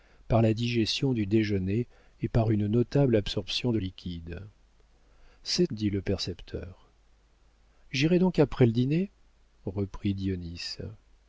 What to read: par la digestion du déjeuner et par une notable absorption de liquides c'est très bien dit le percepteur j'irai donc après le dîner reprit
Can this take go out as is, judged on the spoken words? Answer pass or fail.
fail